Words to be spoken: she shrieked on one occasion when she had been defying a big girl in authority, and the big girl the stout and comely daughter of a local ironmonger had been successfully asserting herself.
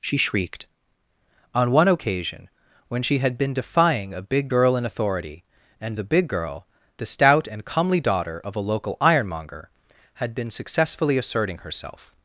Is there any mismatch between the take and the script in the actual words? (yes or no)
no